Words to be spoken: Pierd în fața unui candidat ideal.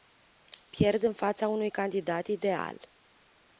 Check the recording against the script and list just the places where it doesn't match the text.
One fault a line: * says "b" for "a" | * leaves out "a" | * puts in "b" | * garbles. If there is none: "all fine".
all fine